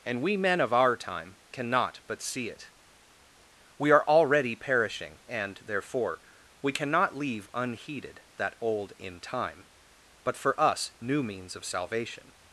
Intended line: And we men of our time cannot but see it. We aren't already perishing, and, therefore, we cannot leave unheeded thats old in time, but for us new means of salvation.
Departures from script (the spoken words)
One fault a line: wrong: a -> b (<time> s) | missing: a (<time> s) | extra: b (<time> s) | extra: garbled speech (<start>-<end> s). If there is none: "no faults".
wrong: aren't -> are (3.9 s)
wrong: thats -> that (8.4 s)